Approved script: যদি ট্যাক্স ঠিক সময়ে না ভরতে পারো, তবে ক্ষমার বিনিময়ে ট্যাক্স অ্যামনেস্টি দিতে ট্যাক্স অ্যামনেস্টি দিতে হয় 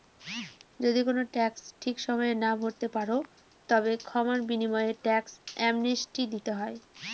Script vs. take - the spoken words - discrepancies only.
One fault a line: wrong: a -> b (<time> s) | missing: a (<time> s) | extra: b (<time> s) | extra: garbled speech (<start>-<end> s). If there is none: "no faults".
extra: কোনো (1.1 s)
missing: ট্যাক্স অ্যামনেস্টি দিতে (6.5 s)